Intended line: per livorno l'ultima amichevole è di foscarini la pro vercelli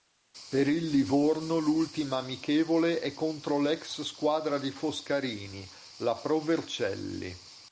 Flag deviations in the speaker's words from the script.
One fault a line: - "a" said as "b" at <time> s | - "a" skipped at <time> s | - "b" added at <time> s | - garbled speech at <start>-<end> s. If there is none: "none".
- "il" added at 0.7 s
- "contro l'ex squadra" added at 3.1 s